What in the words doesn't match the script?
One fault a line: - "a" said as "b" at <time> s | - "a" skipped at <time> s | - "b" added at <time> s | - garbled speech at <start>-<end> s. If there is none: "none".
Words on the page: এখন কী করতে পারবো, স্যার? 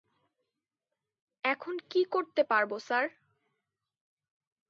none